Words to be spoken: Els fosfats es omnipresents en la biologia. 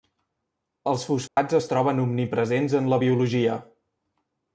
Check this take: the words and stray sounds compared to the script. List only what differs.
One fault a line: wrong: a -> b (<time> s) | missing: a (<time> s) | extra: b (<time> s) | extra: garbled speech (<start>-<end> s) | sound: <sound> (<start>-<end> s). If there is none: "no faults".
sound: dropout (1.3-1.4 s)
extra: troben (1.7 s)